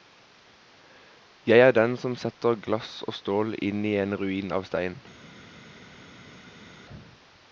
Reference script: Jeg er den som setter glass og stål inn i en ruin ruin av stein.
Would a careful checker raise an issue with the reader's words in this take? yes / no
yes